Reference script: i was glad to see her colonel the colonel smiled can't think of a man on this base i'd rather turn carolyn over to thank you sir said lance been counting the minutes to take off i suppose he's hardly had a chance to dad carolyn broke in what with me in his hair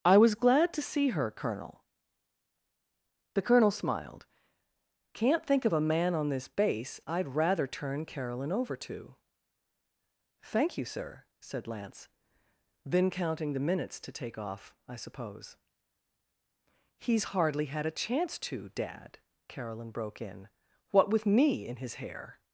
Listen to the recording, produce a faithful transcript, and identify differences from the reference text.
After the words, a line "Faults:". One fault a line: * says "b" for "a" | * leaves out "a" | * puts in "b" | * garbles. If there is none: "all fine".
i was glad to see her colonel the colonel smiled can't think of a man on this base i'd rather turn carolyn over to thank you sir said lance then counting the minutes to take off i suppose he's hardly had a chance to dad carolyn broke in what with me in his hair
Faults:
* says "then" for "been"